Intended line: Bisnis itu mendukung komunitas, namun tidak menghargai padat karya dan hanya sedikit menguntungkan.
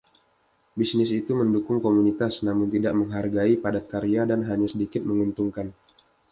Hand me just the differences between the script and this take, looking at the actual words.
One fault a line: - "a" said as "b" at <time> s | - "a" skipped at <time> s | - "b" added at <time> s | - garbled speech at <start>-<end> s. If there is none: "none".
none